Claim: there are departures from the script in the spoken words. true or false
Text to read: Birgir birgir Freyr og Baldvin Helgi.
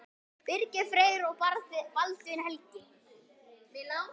true